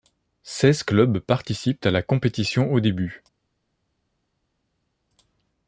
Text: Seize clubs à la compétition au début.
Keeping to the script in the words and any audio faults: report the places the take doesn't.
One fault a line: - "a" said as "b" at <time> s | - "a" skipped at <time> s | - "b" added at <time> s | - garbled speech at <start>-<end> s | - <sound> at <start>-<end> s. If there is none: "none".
- "participent" added at 1.2 s